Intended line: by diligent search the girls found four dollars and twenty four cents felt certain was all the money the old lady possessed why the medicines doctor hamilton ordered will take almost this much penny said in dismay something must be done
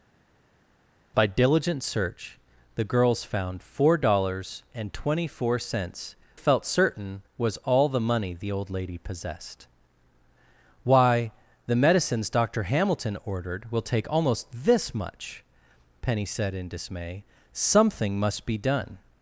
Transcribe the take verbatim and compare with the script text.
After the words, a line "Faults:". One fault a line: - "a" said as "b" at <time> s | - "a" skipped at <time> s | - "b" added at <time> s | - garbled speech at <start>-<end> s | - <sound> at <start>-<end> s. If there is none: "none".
by diligent search the girls found four dollars and twenty four cents felt certain was all the money the old lady possessed why the medicines doctor hamilton ordered will take almost this much penny said in dismay something must be done
Faults:
none